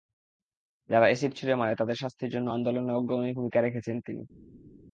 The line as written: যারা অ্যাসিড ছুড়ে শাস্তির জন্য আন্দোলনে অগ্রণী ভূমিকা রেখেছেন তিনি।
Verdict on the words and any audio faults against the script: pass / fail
fail